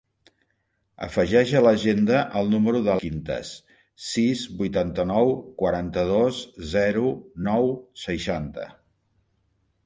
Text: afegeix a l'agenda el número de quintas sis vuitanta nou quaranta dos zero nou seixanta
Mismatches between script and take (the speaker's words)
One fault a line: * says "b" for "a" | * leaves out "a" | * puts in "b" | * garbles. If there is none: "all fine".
all fine